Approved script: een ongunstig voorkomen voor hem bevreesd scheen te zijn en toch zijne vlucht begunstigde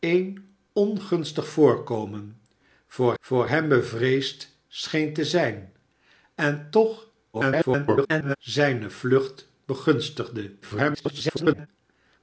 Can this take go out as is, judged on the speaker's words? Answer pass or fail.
fail